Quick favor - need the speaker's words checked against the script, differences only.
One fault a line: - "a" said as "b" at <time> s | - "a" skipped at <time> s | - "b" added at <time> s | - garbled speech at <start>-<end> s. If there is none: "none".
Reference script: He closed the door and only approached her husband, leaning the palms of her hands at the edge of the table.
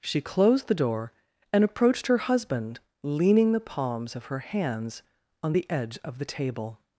- "He" said as "She" at 0.0 s
- "only" skipped at 1.6 s
- "at" said as "on" at 5.4 s